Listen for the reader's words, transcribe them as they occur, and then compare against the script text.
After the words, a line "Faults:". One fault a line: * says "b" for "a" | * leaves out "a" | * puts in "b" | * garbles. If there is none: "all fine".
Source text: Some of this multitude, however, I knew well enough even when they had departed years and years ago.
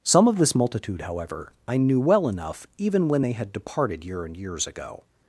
Some of this multitude, however, I knew well enough even when they had departed year and years ago.
Faults:
* says "year" for "years"